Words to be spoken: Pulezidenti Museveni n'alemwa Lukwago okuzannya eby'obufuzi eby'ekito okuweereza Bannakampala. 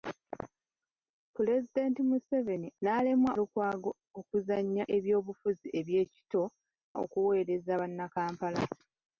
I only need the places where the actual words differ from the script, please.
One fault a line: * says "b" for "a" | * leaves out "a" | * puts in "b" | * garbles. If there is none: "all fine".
all fine